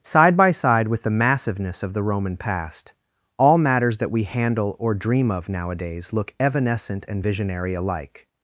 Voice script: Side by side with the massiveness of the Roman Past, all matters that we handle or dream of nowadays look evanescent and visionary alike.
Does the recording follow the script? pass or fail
pass